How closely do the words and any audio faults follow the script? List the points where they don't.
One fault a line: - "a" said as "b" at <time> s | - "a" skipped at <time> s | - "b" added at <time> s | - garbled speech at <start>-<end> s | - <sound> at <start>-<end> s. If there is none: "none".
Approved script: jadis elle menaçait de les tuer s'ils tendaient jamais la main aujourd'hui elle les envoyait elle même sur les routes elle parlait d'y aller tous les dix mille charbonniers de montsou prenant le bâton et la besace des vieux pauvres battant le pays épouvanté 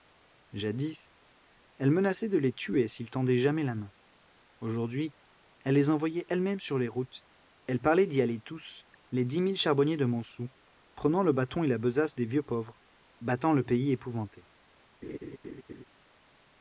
- laugh at 15.0-15.8 s